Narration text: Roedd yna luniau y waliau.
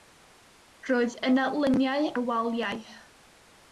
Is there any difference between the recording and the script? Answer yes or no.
no